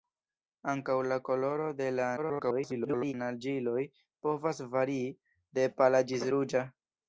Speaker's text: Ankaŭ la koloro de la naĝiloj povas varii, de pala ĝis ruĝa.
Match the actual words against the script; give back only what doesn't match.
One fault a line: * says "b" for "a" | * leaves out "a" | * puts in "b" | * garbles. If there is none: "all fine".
* garbles